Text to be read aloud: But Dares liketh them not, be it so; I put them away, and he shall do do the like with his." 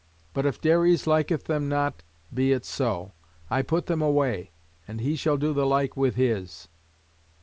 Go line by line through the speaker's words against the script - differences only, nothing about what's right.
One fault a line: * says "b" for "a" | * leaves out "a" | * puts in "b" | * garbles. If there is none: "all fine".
* puts in "if"
* leaves out "do"